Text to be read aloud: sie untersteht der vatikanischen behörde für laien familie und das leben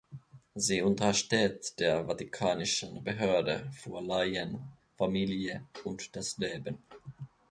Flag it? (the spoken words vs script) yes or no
no